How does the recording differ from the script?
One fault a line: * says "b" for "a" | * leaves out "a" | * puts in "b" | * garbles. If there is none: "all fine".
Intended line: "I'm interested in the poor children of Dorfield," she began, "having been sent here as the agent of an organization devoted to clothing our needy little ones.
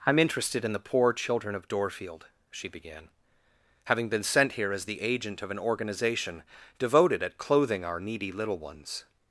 * says "at" for "to"